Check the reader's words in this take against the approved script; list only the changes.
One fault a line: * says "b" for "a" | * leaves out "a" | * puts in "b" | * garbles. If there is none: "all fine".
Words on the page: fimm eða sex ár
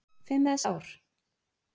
* leaves out "sex"